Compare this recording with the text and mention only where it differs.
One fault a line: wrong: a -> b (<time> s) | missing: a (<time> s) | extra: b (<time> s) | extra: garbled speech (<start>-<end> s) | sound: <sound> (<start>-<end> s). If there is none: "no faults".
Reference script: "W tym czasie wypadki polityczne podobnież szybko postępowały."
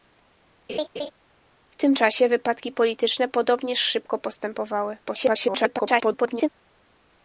sound: laugh (0.7-1.1 s)
extra: garbled speech (5.0-6.5 s)